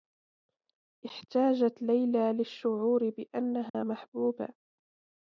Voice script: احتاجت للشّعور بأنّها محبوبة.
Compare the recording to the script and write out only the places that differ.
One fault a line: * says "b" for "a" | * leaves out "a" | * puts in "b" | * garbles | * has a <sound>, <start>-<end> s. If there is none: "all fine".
* puts in "ليلى"
* has a dropout, 3.7-3.7 s